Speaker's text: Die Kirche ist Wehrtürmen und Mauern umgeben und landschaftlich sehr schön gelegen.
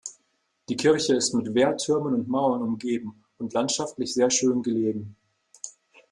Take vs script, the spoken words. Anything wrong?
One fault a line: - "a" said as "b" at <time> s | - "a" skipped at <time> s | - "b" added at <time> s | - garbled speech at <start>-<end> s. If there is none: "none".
- "mit" added at 1.4 s